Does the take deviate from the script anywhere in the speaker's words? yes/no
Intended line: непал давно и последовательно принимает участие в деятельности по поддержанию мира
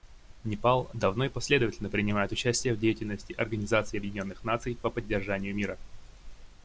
yes